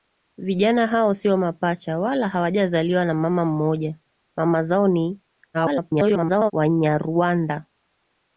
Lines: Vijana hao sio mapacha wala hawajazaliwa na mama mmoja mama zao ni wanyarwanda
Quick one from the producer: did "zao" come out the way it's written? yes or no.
yes